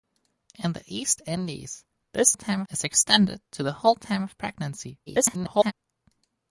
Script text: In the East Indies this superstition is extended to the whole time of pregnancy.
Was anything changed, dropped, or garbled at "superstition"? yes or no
yes